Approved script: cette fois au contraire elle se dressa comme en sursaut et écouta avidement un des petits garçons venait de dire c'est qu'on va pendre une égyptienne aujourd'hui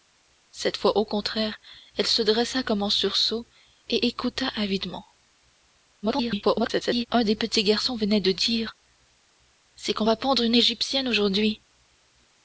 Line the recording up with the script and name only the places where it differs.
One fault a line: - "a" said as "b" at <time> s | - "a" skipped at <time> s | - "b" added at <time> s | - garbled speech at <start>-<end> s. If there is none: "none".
- garbled speech at 6.0-7.1 s